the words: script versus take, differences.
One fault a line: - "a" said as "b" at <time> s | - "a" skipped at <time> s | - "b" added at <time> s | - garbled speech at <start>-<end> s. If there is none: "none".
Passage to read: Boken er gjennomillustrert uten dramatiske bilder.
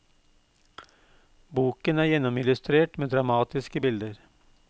- "uten" said as "med" at 3.0 s